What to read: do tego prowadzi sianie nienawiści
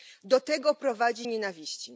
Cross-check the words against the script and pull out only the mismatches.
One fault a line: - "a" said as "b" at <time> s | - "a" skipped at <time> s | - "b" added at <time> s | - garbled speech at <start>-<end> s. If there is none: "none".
- "sianie" skipped at 1.3 s